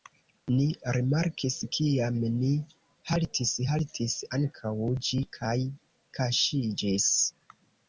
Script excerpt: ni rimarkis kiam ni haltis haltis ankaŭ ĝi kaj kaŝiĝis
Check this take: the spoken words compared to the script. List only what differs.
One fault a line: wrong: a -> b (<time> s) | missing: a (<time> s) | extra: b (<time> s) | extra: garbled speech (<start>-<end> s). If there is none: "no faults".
no faults